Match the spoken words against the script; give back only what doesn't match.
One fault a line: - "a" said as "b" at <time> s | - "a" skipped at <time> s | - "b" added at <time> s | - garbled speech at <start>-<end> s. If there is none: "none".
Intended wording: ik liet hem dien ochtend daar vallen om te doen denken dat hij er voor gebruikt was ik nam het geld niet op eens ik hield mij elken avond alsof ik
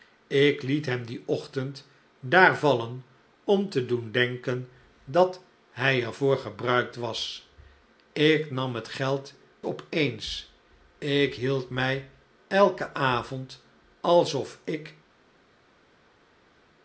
- "niet" skipped at 9.3 s